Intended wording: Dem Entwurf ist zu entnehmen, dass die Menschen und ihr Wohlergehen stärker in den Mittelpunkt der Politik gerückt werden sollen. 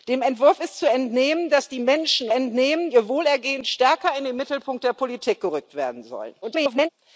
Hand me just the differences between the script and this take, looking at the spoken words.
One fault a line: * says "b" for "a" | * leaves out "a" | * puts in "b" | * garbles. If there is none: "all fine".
* says "entnehmen" for "und"
* garbles